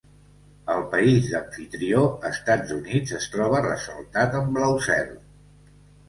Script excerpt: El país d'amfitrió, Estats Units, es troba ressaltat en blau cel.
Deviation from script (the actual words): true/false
false